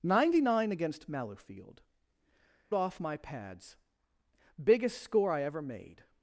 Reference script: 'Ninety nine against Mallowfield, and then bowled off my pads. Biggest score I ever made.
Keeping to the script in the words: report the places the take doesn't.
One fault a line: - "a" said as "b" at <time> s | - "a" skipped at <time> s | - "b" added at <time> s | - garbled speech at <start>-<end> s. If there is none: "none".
- "and then bowled" skipped at 1.8 s